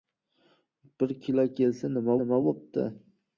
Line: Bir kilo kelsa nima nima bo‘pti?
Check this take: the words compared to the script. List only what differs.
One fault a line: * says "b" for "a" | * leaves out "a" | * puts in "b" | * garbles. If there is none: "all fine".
all fine